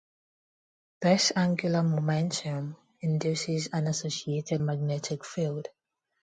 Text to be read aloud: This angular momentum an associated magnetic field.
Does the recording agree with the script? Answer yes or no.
no